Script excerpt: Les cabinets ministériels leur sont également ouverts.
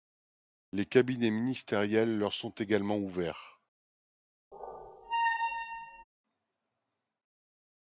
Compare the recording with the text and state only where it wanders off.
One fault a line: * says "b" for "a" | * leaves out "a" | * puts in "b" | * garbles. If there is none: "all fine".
all fine